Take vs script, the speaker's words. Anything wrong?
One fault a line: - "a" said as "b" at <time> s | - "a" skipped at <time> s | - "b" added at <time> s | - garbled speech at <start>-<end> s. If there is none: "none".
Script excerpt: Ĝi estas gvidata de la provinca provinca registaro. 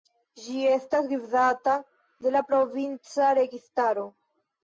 - "provinca" skipped at 3.3 s